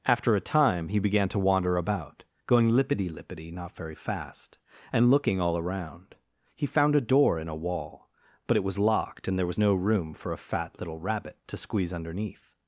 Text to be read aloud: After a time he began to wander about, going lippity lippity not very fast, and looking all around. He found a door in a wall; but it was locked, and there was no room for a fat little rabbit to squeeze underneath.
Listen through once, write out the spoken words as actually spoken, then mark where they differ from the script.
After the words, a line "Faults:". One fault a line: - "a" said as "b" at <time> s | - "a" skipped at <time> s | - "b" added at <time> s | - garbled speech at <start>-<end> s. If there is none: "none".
After a time he began to wander about, going lippity lippity not very fast, and looking all around. He found a door in a wall; but it was locked, and there was no room for a fat little rabbit to squeeze underneath.
Faults:
none